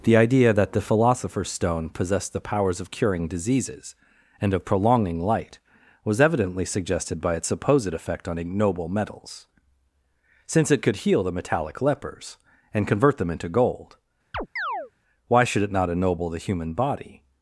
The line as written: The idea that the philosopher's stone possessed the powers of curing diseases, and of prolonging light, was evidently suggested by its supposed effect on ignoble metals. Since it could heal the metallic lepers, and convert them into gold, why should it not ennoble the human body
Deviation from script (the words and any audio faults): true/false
true